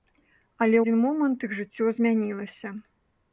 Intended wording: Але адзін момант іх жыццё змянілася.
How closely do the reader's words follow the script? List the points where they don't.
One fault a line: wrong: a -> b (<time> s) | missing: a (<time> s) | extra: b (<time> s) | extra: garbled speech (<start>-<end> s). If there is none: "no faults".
no faults